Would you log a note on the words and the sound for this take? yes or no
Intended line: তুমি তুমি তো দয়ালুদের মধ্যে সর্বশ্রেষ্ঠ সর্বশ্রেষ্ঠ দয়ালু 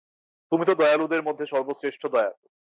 yes